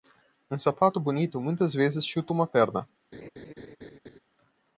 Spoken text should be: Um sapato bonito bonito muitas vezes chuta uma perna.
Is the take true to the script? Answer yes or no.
no